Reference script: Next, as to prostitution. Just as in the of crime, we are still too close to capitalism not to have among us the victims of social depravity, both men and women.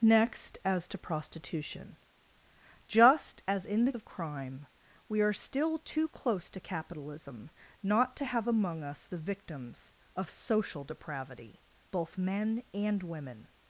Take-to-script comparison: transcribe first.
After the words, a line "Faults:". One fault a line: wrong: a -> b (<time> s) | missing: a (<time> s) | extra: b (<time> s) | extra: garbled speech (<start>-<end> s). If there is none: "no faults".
Next, as to prostitution. Just as in the of crime, we are still too close to capitalism not to have among us the victims of social depravity, both men and women.
Faults:
no faults